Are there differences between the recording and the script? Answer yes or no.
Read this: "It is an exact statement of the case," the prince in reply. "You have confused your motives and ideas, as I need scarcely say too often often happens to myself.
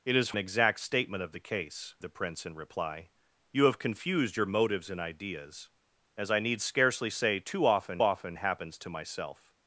no